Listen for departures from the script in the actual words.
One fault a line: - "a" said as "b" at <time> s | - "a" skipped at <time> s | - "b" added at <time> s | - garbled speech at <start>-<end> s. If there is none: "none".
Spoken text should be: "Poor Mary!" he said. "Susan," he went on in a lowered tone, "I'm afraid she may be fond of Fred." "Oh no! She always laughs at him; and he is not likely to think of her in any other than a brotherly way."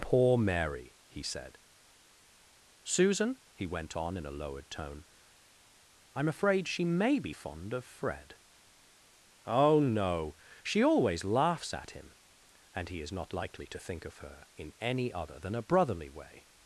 none